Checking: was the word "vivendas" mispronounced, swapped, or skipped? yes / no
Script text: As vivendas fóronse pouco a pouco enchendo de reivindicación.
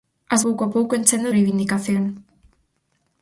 yes